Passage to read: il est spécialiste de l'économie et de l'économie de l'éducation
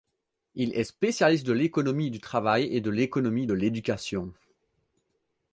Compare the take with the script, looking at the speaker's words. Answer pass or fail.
fail